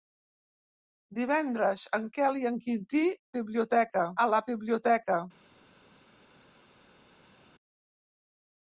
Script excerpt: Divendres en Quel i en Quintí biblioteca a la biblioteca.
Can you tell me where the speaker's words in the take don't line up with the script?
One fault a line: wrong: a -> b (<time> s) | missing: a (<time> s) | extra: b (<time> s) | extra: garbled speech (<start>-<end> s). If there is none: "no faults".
no faults